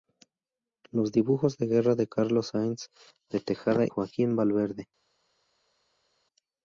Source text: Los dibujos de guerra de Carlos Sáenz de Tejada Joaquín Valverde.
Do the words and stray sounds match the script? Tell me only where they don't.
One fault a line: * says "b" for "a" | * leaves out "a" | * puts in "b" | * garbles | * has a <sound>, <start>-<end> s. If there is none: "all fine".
all fine